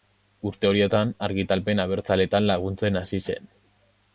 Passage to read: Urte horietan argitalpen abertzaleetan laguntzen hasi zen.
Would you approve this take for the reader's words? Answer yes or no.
yes